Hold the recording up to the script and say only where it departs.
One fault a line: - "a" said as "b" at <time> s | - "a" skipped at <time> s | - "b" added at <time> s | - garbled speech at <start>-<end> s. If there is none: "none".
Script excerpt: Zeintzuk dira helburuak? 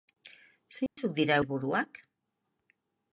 none